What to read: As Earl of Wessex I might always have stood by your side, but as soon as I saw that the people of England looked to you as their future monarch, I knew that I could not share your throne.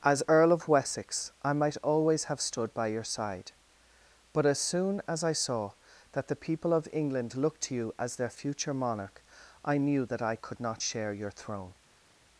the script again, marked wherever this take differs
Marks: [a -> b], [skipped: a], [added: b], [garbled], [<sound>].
As Earl of Wessex I might always have stood by your side, but as soon as I saw that the people of England looked to you as their future monarch, I knew that I could not share your throne.